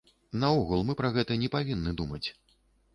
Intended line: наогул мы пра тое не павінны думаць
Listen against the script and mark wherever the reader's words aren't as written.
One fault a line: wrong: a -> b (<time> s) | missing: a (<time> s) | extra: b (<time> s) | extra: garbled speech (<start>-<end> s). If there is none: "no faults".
wrong: тое -> гэта (1.2 s)